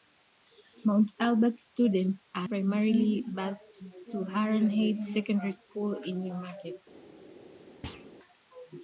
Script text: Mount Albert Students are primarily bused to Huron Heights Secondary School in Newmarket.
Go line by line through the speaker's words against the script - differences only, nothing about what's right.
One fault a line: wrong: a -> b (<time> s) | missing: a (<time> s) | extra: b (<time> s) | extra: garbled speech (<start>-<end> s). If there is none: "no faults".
no faults